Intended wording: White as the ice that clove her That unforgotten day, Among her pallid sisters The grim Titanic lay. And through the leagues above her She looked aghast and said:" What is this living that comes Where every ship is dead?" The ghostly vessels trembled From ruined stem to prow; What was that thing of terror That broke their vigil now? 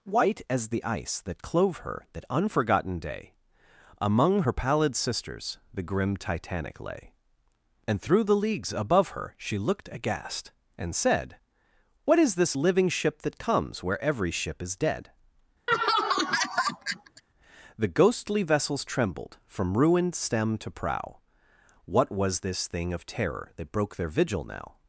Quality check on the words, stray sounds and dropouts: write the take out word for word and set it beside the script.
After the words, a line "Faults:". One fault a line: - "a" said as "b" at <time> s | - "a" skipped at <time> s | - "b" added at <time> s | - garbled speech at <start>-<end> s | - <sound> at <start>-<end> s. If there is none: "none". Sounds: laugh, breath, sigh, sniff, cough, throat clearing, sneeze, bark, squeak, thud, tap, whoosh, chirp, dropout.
White as the ice that clove her That unforgotten day, Among her pallid sisters The grim Titanic lay. And through the leagues above her She looked aghast and said:" What is this living ship that comes Where every ship is dead?" The ghostly vessels trembled From ruined stem to prow; What was this thing of terror That broke their vigil now?
Faults:
- "ship" added at 12.9 s
- laugh at 15.7-17.2 s
- "that" said as "this" at 22.4 s